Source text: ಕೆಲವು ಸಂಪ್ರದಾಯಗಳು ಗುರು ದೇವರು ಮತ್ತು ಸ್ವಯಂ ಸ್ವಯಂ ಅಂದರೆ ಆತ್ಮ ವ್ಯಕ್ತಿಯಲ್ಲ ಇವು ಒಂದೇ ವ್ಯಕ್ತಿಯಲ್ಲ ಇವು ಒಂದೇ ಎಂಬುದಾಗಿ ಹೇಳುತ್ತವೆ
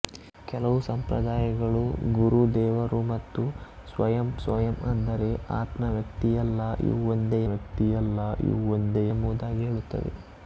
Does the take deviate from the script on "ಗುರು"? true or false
false